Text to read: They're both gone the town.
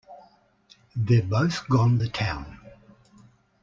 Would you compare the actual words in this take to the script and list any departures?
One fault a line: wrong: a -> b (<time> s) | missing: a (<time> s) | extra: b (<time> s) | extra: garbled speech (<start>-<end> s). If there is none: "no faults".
no faults